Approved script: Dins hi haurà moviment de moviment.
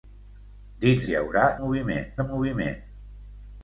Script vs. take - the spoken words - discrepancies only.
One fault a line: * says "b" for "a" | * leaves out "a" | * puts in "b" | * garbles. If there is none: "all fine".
all fine